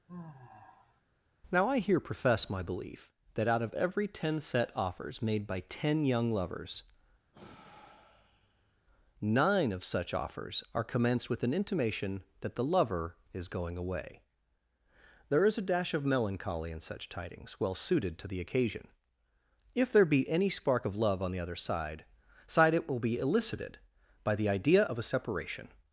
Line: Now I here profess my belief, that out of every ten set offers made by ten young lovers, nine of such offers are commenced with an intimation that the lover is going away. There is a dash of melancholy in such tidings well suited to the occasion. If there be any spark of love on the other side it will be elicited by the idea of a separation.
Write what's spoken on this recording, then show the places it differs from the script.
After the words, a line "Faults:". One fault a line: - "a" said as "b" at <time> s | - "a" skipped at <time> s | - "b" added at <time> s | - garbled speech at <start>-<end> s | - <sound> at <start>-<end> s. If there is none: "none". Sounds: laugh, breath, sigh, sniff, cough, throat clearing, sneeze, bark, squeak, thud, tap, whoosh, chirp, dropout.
Now I here profess my belief, that out of every ten set offers made by ten young lovers, nine of such offers are commenced with an intimation that the lover is going away. There is a dash of melancholy in such tidings well suited to the occasion. If there be any spark of love on the other side side it will be elicited by the idea of a separation.
Faults:
- sigh at 0.1-1.0 s
- sigh at 7.3-8.8 s
- "side" added at 22.5 s